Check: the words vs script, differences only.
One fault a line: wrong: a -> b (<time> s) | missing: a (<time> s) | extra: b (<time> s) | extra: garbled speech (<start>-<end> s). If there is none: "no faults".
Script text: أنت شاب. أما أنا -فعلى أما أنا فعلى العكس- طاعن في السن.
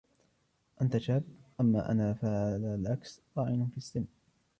missing: أما أنا فعلى (2.8 s)